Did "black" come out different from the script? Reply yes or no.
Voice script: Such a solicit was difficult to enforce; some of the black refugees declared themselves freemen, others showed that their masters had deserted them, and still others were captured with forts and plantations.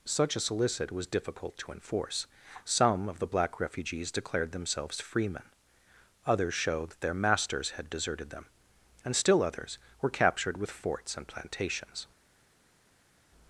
no